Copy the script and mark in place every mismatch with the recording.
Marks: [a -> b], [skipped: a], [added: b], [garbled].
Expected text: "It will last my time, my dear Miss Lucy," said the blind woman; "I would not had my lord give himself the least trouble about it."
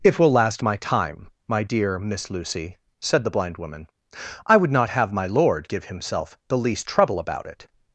"It will last my time, my dear Miss Lucy," said the blind woman; "I would not [had -> have] my lord give himself the least trouble about it."